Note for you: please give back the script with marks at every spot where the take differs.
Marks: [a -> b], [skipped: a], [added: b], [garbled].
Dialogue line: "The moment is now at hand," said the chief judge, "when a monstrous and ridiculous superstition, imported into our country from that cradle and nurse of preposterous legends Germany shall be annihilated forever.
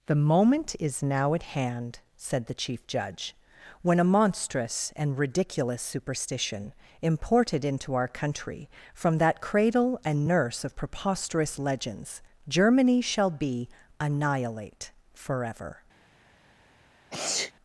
"The moment is now at hand," said the chief judge, "when a monstrous and ridiculous superstition, imported into our country from that cradle and nurse of preposterous legends Germany shall be [annihilated -> annihilate] forever.